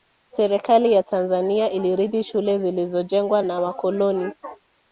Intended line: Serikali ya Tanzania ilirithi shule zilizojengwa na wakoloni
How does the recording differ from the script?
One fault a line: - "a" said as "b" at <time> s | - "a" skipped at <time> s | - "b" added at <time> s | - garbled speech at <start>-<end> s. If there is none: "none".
none